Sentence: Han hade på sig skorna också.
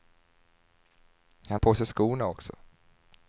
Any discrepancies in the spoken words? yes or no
yes